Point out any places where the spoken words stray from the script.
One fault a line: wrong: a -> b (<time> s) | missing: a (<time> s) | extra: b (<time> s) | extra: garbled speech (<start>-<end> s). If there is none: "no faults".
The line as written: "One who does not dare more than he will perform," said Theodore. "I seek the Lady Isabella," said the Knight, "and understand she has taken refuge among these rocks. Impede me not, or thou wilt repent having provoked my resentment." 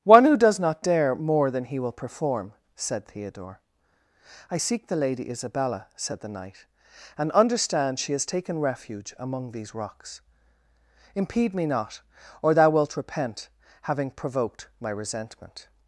no faults